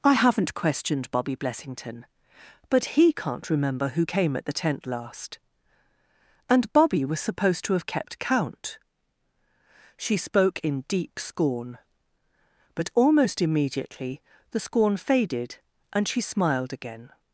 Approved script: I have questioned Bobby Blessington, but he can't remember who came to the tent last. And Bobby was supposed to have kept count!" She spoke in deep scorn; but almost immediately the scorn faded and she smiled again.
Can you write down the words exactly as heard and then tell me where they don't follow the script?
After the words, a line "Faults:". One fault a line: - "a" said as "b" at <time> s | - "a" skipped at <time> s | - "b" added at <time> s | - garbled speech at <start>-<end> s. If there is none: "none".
I haven't questioned Bobby Blessington, but he can't remember who came at the tent last. And Bobby was supposed to have kept count!" She spoke in deep scorn; but almost immediately the scorn faded and she smiled again.
Faults:
- "have" said as "haven't" at 0.1 s
- "to" said as "at" at 4.4 s